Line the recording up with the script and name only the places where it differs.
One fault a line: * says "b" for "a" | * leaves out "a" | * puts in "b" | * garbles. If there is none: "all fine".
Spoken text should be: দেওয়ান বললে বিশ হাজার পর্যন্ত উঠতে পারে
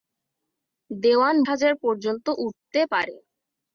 * leaves out "বললে বিশ"